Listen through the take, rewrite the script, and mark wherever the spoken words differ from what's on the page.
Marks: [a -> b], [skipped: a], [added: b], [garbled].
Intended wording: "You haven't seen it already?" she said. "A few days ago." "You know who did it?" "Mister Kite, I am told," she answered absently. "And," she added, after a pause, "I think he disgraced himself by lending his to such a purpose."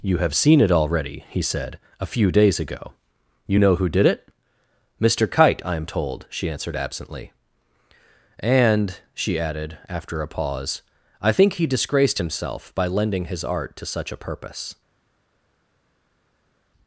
"You [haven't -> have] seen it already?" [she -> he] said. "A few days ago." "You know who did it?" "Mister Kite, I am told," she answered absently. "And," she added, after a pause, "I think he disgraced himself by lending his [added: art] to such a purpose."